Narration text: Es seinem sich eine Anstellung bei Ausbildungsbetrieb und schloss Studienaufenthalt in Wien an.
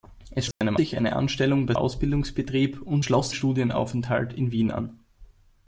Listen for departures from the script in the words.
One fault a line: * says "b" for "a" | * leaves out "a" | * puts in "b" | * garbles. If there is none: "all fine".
all fine